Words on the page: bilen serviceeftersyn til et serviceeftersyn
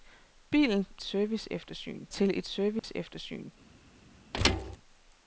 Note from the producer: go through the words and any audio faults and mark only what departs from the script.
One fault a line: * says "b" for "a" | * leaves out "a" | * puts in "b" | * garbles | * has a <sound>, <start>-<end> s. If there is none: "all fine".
* has a dropout, 2.8-2.8 s
* has a thud, 4.3-4.8 s